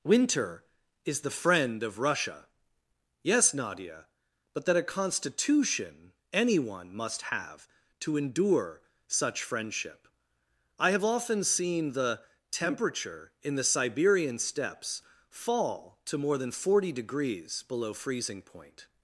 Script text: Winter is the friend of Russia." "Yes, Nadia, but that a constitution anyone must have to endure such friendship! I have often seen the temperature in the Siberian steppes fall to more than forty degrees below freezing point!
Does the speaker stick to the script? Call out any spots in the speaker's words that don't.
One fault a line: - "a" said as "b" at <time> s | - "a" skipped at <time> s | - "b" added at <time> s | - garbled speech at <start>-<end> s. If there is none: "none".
none